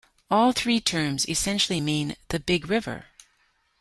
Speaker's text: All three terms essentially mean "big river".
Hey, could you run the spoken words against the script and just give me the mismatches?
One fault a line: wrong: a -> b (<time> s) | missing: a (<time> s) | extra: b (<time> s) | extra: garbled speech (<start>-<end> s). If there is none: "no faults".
extra: the (2.3 s)